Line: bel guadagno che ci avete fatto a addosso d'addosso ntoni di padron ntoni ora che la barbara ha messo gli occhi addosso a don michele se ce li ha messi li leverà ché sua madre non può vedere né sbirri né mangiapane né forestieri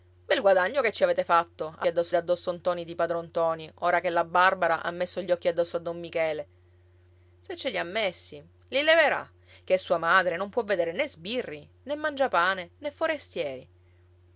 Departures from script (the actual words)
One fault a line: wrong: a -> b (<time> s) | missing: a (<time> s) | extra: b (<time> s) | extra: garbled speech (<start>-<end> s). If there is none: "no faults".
no faults